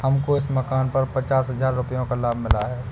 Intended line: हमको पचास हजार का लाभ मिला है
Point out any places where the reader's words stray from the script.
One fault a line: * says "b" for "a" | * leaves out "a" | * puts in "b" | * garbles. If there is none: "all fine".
* puts in "इस मकान पर"
* puts in "रुपयों"